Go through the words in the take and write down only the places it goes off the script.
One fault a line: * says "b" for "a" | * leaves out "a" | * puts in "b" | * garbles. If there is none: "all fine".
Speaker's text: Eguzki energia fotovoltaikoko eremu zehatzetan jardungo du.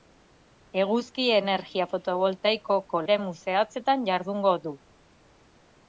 all fine